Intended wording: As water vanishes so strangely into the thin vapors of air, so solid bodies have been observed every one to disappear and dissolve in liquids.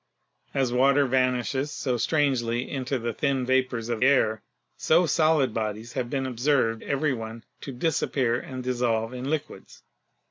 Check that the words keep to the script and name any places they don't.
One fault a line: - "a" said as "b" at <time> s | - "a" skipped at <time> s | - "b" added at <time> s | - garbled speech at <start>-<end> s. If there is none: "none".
none